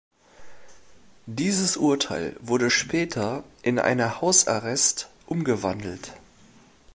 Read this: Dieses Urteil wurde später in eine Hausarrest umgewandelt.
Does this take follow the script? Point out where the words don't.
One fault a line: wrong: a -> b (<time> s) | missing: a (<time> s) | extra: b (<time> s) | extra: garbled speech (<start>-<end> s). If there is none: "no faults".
no faults